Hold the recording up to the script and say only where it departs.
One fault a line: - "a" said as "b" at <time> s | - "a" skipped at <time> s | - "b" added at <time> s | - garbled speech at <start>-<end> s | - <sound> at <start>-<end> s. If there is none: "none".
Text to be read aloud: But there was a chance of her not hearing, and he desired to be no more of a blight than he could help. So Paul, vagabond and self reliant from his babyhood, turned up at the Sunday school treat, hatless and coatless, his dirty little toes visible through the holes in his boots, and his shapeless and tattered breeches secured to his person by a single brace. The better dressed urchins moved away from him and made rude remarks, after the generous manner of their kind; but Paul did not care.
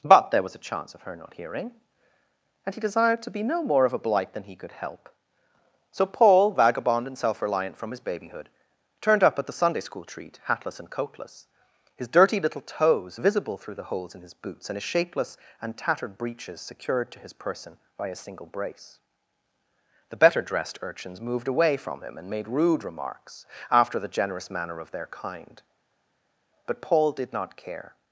none